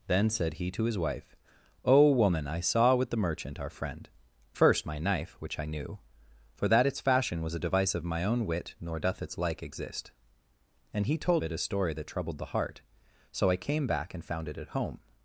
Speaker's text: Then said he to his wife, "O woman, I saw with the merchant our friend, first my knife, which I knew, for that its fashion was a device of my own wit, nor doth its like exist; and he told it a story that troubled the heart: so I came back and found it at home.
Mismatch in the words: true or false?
false